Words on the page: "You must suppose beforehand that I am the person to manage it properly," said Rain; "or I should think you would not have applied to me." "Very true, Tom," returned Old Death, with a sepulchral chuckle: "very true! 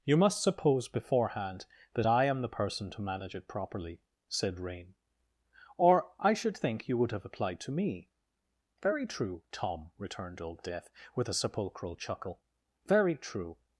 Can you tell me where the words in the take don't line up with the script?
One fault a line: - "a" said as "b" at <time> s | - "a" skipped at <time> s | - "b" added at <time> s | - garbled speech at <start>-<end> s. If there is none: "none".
- "not" skipped at 7.1 s